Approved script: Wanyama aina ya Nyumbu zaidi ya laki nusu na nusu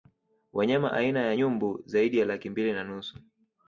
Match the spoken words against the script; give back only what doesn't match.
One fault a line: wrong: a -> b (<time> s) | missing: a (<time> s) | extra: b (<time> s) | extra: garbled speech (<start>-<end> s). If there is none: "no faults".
wrong: nusu -> mbili (2.5 s)